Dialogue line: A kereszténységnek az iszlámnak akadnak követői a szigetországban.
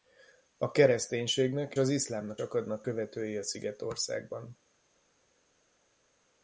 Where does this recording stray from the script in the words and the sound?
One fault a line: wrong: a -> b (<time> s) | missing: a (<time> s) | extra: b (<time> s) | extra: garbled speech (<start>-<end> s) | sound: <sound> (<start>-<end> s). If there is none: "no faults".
no faults